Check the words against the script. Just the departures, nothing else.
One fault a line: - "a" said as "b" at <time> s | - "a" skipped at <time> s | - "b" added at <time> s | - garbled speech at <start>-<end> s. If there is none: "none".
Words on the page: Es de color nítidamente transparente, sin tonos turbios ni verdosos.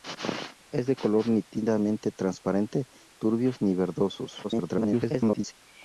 - "sin tonos" skipped at 2.9 s
- garbled speech at 4.4-5.5 s